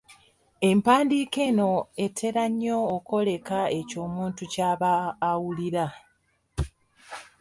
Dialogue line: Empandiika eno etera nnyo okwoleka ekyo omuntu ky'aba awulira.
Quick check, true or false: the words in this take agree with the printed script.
true